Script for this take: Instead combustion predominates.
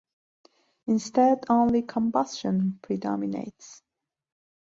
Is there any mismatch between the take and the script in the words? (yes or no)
yes